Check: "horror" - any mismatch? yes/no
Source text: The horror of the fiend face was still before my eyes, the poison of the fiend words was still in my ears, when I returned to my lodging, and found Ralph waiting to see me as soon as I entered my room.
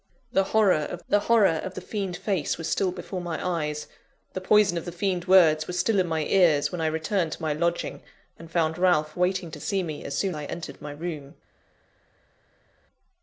no